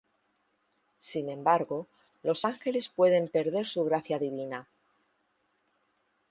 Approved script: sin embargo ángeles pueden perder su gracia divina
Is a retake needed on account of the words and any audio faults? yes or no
yes